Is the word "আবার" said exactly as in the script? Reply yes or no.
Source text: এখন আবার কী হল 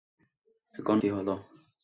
no